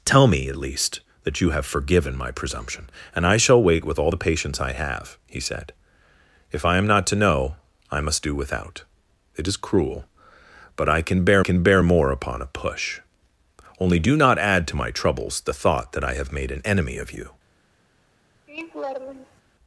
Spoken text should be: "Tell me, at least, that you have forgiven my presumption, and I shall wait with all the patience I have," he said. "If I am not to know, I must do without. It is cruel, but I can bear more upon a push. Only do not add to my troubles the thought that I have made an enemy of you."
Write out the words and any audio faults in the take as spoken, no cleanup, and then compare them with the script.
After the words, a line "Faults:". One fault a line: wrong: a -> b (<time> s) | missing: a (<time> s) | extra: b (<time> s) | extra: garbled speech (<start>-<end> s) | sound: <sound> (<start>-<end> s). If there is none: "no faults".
"Tell me, at least, that you have forgiven my presumption, and I shall wait with all the patience I have," he said. "If I am not to know, I must do without. It is cruel, but I can bear can bear more upon a push. Only do not add to my troubles the thought that I have made an enemy of you."
Faults:
extra: can bear (11.4 s)
sound: laugh (18.5-19.4 s)